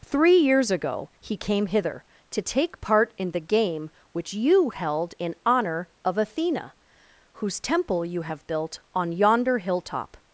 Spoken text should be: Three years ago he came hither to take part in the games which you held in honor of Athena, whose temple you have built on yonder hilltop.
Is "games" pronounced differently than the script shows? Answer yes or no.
yes